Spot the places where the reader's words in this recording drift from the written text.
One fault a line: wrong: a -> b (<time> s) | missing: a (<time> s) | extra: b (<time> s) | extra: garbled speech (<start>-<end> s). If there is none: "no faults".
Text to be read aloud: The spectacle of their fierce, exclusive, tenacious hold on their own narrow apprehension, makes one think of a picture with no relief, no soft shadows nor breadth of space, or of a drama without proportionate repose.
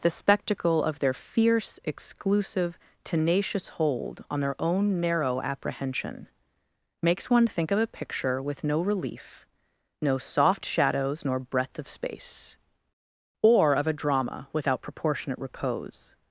no faults